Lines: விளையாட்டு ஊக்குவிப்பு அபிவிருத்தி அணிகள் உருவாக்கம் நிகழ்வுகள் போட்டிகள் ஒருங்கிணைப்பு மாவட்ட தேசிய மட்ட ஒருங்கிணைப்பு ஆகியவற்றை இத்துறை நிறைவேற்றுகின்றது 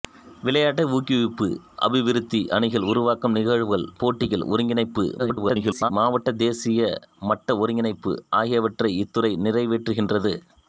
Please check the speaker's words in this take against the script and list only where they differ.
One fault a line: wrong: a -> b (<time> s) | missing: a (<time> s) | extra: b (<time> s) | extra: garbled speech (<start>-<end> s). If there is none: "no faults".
extra: garbled speech (5.2-5.9 s)